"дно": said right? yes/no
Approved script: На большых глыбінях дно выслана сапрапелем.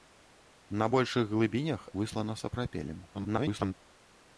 no